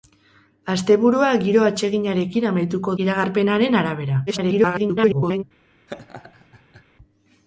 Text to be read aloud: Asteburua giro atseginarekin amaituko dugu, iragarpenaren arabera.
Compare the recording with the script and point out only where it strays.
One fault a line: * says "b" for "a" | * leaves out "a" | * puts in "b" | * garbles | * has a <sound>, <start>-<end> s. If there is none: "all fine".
* leaves out "dugu"
* garbles
* has a laugh, 5.9-6.8 s